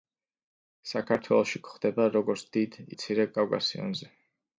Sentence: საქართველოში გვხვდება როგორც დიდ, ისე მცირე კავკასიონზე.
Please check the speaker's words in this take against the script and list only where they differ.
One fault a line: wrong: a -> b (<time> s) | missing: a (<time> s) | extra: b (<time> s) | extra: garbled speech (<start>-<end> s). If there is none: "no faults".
missing: ისე (2.8 s)